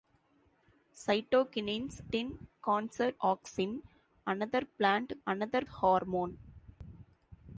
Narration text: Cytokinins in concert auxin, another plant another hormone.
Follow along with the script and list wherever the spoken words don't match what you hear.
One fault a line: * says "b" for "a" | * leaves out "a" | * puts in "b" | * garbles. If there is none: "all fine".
all fine